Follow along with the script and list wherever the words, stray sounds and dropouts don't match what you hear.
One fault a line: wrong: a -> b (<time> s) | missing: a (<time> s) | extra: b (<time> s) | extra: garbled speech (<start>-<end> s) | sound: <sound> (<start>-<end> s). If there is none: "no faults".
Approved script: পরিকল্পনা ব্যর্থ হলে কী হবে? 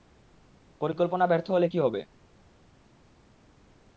no faults